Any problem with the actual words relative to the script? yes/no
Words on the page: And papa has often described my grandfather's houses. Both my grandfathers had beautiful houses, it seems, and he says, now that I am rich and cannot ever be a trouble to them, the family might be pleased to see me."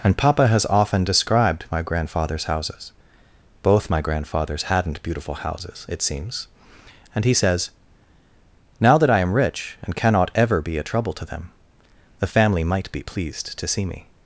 yes